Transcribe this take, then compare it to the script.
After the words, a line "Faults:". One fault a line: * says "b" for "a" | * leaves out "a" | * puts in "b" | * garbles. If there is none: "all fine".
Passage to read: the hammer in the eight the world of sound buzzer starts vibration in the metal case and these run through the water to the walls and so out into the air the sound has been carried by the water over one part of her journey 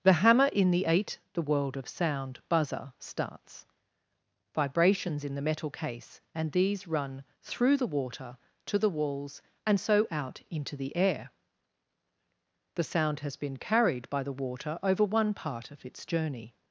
the hammer in the eight the world of sound buzzer starts vibrations in the metal case and these run through the water to the walls and so out into the air the sound has been carried by the water over one part of its journey
Faults:
* says "vibrations" for "vibration"
* says "its" for "her"